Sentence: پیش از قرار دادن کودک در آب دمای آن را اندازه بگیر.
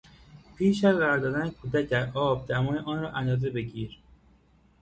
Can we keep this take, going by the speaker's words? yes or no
yes